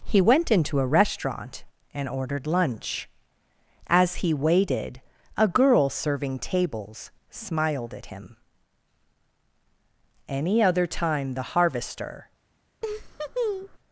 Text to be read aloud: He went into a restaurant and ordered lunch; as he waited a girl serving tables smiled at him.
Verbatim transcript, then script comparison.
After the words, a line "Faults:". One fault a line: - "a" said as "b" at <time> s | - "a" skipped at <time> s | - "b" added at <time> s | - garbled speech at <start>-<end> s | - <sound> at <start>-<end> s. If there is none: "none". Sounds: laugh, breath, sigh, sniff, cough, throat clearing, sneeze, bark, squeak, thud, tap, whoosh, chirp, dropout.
He went into a restaurant and ordered lunch; as he waited a girl serving tables smiled at him. Any other time the Harvester
Faults:
- "Any other time the Harvester" added at 10.3 s
- laugh at 12.8-13.8 s